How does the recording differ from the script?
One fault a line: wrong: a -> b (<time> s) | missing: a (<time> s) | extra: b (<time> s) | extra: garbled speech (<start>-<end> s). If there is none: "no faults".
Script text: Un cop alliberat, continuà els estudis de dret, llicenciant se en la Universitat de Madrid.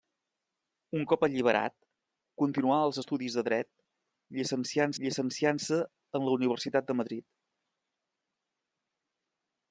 extra: llicenciant (5.0 s)